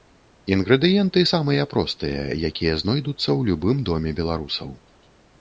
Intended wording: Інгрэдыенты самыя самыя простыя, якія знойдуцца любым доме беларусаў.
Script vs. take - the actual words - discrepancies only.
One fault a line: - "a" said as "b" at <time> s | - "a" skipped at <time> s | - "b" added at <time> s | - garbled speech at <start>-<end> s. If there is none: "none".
- "самыя" skipped at 1.7 s
- "ў" added at 3.3 s